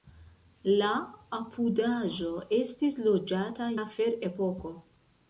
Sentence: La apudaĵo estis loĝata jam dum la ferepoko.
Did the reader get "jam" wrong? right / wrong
wrong